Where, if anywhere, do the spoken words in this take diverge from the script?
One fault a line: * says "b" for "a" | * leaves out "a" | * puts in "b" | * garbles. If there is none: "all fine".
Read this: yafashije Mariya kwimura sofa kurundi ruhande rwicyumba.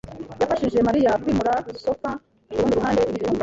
all fine